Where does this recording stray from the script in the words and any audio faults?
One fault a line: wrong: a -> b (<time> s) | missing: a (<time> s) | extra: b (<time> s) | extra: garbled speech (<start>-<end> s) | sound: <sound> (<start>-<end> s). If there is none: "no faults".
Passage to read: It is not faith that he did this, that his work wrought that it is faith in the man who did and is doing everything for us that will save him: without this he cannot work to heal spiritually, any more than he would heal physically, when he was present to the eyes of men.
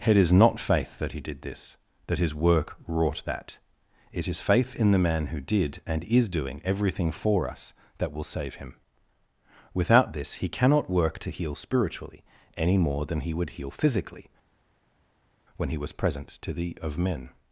missing: eyes (16.8 s)